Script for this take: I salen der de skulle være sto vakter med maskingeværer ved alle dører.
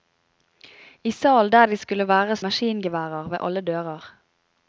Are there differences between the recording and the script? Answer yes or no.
yes